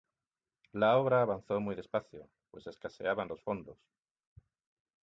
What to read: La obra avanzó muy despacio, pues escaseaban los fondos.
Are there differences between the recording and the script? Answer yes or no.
no